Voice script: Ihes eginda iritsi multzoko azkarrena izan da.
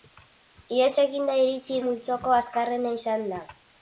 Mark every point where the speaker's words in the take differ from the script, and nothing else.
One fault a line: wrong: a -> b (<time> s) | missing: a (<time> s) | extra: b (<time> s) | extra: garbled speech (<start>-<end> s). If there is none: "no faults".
no faults